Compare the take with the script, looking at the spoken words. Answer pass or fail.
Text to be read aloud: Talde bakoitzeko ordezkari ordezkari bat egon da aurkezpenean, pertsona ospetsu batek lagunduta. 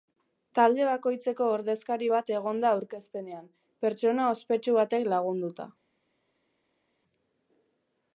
fail